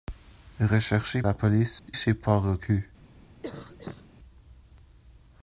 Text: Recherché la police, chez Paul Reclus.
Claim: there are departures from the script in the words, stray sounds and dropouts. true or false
true